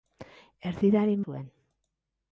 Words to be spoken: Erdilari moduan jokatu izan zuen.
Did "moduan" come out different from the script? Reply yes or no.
yes